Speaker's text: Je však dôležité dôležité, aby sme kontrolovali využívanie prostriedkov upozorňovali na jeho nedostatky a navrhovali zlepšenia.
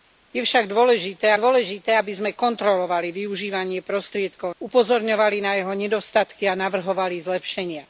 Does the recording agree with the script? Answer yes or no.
yes